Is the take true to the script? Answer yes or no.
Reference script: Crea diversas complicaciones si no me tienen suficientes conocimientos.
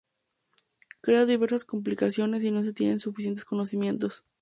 no